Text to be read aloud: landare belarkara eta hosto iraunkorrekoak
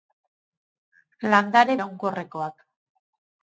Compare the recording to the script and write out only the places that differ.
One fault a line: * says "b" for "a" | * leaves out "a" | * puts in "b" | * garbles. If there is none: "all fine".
* leaves out "belarkara eta hosto"